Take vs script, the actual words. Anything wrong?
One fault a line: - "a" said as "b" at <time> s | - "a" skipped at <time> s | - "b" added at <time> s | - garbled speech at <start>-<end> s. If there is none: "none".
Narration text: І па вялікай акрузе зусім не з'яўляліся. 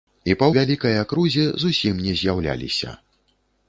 none